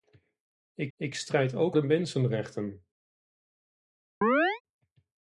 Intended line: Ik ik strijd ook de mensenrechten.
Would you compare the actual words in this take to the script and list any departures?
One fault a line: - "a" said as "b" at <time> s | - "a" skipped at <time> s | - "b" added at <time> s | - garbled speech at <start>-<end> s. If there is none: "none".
none